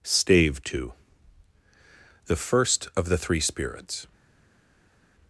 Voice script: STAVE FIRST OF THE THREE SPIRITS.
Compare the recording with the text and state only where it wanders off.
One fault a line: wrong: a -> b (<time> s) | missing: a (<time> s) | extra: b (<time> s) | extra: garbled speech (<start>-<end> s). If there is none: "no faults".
extra: TWO THE (0.6 s)